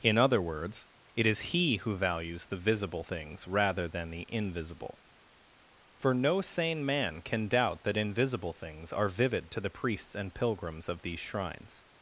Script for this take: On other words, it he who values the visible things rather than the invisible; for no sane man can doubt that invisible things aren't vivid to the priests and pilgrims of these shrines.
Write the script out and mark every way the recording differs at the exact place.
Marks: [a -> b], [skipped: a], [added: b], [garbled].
[On -> In] other words, it [added: is] he who values the visible things rather than the invisible; for no sane man can doubt that invisible things [aren't -> are] vivid to the priests and pilgrims of these shrines.